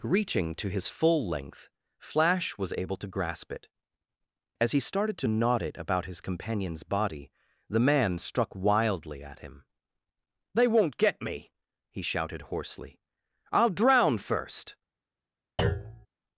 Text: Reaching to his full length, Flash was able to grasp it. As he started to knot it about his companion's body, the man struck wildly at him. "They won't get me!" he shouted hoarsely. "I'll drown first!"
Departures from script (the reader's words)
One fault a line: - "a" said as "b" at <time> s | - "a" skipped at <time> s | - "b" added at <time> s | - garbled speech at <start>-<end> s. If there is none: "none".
none